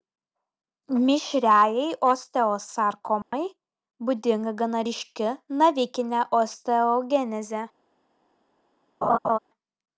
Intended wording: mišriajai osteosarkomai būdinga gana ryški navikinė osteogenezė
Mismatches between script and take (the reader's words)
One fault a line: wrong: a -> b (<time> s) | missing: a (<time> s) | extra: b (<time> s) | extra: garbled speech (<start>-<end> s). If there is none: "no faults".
no faults